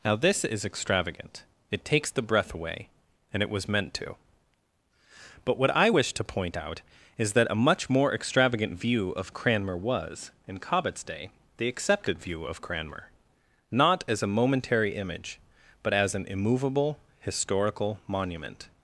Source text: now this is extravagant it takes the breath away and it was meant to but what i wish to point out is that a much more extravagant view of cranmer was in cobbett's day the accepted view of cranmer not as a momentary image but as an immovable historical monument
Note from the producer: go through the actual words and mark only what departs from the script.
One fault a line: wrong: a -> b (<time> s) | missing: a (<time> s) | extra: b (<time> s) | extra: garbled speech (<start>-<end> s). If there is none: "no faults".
no faults